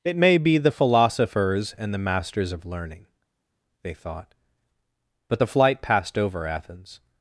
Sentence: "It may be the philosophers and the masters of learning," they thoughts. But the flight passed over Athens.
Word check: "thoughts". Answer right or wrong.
wrong